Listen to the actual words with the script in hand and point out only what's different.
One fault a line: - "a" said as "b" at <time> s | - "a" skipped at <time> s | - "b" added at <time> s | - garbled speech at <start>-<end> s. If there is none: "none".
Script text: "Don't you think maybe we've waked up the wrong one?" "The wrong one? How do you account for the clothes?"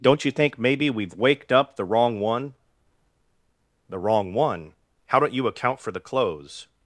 - "do" said as "don't" at 5.2 s